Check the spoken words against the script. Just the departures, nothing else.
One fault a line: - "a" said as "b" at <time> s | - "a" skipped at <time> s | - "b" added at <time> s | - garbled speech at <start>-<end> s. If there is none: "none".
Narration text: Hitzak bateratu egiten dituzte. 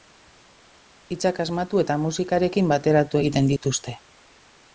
- "asmatu eta musikarekin" added at 1.4 s